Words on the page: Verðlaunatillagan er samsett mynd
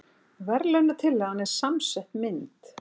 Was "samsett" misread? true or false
false